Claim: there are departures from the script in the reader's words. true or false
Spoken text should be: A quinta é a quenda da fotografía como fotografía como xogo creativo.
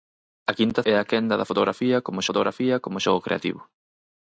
false